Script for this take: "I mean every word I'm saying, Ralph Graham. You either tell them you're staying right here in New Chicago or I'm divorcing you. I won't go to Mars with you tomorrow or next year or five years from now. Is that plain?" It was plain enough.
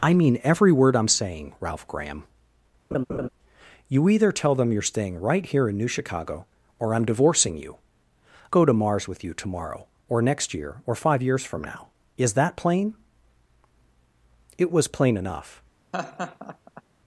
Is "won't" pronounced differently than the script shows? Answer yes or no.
yes